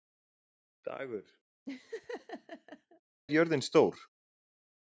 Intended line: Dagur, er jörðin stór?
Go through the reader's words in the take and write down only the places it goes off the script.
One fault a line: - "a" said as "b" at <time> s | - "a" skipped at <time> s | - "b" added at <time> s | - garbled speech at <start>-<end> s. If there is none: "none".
none